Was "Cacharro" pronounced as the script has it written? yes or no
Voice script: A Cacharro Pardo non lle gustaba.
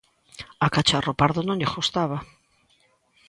yes